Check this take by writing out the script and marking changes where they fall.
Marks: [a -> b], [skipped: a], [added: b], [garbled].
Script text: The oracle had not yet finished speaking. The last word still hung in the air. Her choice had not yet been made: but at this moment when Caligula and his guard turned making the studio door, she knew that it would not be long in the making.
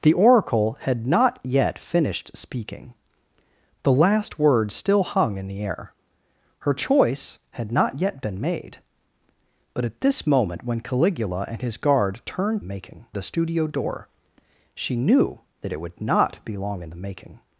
The oracle had not yet finished speaking. The last word still hung in the air. Her choice had not yet been made: but at this moment when Caligula and his guard turned making the studio door, she knew that it would not be long in the making.